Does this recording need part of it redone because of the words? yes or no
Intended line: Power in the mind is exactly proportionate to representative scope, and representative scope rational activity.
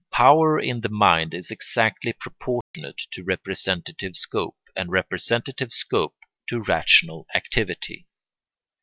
yes